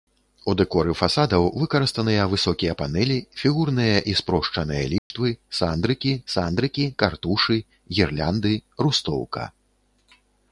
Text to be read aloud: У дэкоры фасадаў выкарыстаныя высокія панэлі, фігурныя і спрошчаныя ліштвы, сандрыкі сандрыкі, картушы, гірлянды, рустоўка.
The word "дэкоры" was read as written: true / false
true